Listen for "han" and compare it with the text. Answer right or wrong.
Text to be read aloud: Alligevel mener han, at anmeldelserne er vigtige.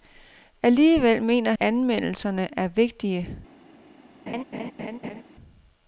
wrong